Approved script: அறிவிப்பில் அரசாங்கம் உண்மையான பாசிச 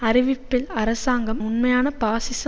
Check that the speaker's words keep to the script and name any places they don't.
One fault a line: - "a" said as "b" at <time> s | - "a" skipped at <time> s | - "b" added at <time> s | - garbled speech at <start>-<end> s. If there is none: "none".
none